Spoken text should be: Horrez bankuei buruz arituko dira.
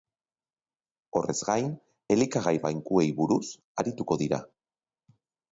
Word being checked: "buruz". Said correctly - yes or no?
yes